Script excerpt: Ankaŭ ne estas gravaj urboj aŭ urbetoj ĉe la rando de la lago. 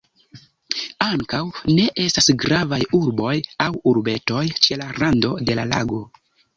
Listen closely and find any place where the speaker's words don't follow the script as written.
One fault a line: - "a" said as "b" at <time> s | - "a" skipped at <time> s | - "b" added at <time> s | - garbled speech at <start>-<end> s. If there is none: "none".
none